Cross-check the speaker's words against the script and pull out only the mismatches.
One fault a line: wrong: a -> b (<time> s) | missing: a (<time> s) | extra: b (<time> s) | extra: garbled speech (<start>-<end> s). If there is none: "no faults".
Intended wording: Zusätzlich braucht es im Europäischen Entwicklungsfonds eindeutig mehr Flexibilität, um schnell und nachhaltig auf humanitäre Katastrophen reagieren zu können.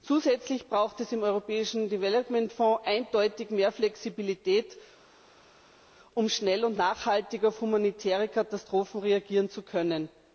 no faults